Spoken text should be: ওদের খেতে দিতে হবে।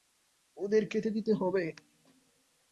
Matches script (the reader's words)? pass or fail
pass